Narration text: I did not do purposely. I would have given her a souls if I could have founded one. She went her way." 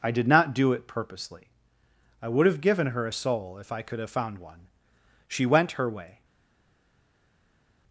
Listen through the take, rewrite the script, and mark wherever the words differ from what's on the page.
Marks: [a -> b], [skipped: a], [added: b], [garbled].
I did not do [added: it] purposely. I would have given her a [souls -> soul] if I could have [founded -> found] one. She went her way."